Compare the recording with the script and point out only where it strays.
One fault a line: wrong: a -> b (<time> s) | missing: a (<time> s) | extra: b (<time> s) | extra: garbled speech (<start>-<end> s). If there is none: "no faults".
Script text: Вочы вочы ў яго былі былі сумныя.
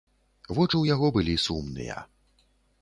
missing: вочы (0.7 s)
missing: былі (1.3 s)